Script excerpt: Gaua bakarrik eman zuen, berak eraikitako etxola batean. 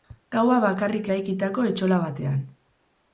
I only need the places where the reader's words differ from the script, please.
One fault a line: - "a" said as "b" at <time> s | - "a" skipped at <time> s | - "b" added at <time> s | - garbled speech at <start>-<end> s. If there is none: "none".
- "eman zuen berak" skipped at 1.1 s